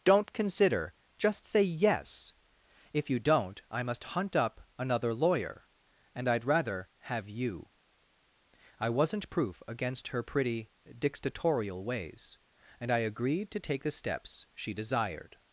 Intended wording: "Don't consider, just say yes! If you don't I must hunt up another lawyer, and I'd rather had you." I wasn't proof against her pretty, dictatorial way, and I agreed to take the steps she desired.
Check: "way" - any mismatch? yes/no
yes